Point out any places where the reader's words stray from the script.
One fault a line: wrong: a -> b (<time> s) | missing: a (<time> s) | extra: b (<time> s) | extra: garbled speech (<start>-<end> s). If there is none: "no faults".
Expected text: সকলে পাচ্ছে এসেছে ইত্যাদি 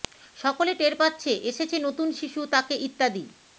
extra: টের (0.8 s)
extra: নতুন শিশু তাকে (1.8 s)